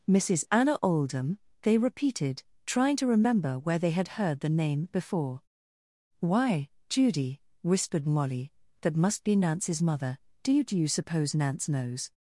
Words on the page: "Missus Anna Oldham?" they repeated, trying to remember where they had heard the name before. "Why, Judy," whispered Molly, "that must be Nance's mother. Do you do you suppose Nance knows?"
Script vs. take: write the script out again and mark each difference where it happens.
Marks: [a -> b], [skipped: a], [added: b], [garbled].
"Missus Anna Oldham?" they repeated, trying to remember where they had heard the name before. "Why, Judy," whispered Molly, "that must be Nance's mother. Do you do you suppose Nance knows?"